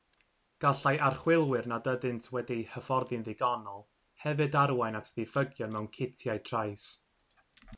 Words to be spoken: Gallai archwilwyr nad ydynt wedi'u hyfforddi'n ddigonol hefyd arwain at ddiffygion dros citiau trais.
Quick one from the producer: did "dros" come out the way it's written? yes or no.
no